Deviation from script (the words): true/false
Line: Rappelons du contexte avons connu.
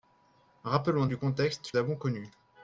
false